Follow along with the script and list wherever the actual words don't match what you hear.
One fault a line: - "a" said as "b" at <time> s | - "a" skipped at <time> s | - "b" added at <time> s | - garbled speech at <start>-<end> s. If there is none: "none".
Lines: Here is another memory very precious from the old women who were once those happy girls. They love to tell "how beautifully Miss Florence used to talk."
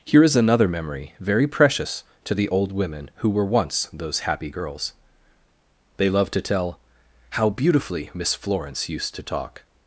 - "from" said as "to" at 2.2 s